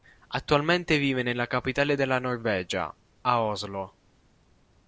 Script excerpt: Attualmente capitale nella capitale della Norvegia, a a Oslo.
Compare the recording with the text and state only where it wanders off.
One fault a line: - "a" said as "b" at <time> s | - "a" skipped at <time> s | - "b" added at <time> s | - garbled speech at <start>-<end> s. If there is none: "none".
- "capitale" said as "vive" at 1.0 s
- "a" skipped at 3.4 s